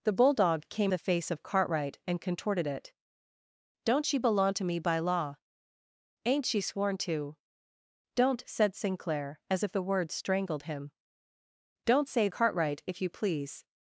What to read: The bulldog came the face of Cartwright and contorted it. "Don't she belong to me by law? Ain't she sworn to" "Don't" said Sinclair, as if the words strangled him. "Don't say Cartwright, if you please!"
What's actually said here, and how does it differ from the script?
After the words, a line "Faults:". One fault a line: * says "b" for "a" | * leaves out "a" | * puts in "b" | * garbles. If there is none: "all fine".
The bulldog came the face of Cartwright and contorted it. "Don't she belong to me by law? Ain't she sworn to" "Don't" said Sinclair, as if the words strangled him. "Don't say Cartwright, if you please!"
Faults:
all fine